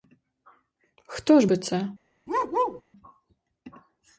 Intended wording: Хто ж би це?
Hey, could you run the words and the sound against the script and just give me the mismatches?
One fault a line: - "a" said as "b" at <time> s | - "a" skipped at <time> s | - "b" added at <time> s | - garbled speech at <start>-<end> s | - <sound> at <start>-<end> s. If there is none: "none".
- bark at 2.3-2.8 s